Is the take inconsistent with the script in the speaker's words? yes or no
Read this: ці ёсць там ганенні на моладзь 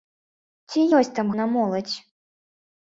yes